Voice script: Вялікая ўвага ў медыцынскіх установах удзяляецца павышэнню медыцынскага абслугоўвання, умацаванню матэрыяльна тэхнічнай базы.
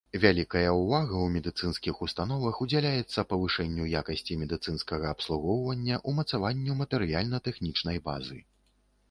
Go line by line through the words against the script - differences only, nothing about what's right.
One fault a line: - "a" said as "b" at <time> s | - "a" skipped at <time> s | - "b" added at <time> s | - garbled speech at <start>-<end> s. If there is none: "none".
- "якасці" added at 4.0 s